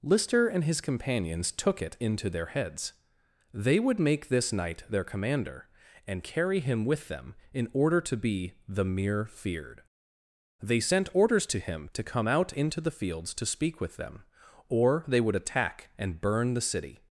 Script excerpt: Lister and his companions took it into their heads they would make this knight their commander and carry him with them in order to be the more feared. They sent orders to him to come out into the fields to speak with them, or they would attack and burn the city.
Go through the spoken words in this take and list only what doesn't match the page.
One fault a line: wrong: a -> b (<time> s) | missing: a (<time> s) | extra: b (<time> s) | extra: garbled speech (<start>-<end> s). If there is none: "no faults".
wrong: more -> mere (8.8 s)